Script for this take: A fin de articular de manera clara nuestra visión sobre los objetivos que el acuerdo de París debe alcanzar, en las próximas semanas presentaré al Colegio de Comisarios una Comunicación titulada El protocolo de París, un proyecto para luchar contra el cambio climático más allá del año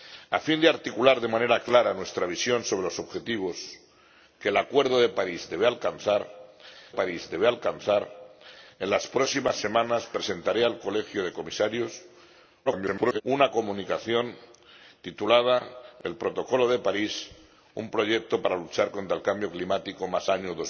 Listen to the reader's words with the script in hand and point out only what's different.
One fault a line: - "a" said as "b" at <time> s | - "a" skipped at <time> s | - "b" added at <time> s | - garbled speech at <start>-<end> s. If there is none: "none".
- "París debe alcanzar" added at 6.9 s
- garbled speech at 12.7-13.2 s
- "allá del" skipped at 20.3 s